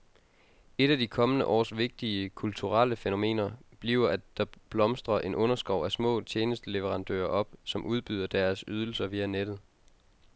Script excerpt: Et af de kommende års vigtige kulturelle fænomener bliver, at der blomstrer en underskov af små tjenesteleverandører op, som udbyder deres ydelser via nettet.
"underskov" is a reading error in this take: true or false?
false